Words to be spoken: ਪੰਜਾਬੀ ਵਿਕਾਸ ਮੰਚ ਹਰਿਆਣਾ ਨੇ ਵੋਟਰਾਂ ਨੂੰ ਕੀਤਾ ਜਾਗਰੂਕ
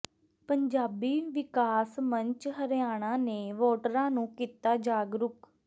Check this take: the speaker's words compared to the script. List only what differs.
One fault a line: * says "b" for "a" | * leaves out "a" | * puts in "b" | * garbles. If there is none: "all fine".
all fine